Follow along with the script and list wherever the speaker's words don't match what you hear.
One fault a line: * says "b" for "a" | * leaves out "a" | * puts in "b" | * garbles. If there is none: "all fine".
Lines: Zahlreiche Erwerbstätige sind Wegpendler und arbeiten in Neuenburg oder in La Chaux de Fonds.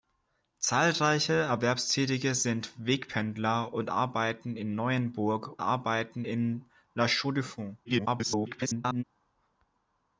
* says "arbeiten" for "oder"
* garbles